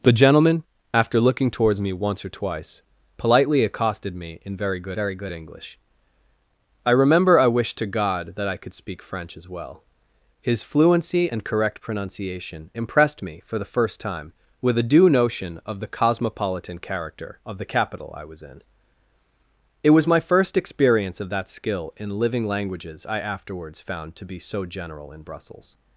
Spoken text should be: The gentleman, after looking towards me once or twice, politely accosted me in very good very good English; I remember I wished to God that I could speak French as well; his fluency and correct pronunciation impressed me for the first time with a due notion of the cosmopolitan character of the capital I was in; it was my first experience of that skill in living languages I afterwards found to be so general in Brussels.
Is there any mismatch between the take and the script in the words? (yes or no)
no